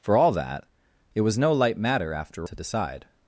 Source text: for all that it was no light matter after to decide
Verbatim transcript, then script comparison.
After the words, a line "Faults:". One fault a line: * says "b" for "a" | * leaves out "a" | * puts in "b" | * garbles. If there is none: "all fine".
for all that it was no light matter after to decide
Faults:
all fine